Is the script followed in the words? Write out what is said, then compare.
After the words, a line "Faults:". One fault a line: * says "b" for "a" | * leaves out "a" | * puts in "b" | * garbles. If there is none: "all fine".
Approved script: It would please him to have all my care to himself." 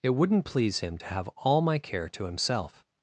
It wouldn't please him to have all my care to himself."
Faults:
* says "wouldn't" for "would"